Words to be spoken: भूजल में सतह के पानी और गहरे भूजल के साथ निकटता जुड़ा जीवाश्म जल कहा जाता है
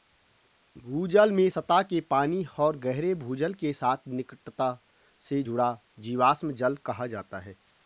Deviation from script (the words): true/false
true